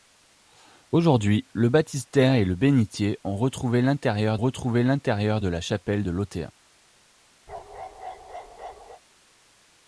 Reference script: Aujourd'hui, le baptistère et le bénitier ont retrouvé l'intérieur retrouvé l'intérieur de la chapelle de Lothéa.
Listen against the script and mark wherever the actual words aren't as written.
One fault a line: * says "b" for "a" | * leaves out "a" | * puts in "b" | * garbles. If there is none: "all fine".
all fine